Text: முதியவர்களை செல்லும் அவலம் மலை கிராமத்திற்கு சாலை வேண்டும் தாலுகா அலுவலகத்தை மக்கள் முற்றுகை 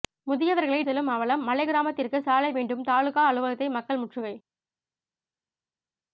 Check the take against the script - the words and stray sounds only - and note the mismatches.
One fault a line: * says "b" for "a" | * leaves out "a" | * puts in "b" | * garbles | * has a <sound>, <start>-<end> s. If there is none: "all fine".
all fine